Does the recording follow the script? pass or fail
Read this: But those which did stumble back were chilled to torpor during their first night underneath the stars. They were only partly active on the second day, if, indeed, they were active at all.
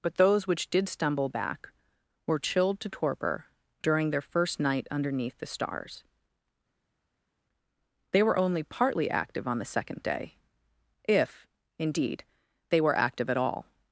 pass